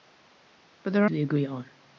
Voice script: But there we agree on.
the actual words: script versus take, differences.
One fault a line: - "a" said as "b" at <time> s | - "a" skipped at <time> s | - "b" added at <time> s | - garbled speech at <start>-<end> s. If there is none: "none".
none